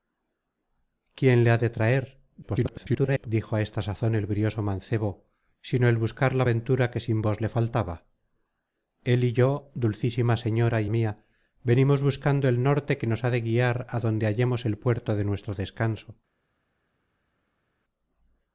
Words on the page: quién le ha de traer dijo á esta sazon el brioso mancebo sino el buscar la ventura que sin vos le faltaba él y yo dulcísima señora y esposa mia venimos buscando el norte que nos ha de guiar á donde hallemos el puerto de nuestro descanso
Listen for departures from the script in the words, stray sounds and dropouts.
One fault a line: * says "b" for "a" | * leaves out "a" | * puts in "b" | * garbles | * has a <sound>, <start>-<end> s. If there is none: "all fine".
* garbles
* leaves out "esposa"